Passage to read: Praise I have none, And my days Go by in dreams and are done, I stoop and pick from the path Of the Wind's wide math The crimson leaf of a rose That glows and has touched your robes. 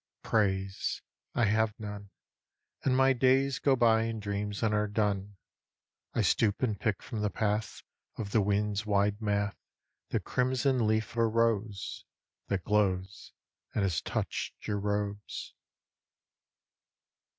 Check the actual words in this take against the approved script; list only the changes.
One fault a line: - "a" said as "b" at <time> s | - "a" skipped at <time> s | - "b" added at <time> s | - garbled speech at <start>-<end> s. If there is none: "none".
- "of" skipped at 11.2 s